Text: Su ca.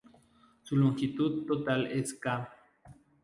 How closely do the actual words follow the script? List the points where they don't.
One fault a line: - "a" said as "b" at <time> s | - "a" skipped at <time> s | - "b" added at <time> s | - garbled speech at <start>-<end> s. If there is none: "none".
- "longitud total es" added at 0.8 s